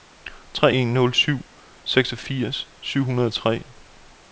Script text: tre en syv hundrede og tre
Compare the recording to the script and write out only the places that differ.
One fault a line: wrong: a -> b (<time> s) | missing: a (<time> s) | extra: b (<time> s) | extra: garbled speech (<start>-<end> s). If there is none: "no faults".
extra: nul syv seksogfirs (0.9 s)